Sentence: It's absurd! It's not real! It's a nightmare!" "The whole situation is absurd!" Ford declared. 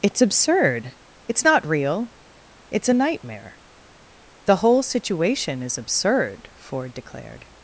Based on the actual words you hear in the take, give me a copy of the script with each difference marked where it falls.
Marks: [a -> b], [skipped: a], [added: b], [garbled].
It's absurd! It's not real! It's a nightmare!" "The whole situation is absurd!" Ford declared.